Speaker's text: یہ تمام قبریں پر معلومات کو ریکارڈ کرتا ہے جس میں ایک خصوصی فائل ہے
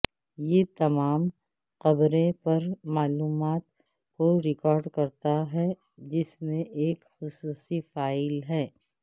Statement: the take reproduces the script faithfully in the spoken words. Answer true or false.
true